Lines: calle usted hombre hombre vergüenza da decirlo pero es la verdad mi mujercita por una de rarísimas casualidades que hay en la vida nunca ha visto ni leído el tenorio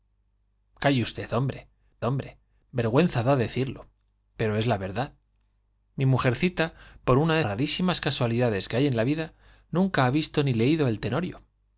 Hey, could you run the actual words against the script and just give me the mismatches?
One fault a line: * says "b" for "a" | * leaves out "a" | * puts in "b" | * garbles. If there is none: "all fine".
all fine